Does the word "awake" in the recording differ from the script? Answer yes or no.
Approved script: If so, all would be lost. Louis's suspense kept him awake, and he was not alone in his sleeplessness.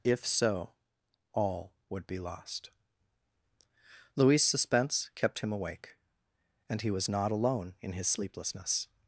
no